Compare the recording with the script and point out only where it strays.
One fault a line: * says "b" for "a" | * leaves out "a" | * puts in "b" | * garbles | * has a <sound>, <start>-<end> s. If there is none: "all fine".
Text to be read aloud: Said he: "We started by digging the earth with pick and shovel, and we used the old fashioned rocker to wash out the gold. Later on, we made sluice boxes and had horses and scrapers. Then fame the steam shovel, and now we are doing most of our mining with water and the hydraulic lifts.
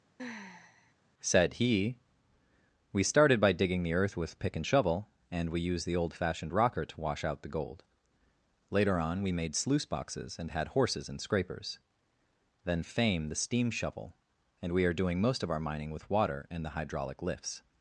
* has a sigh, 0.2-0.9 s
* leaves out "now"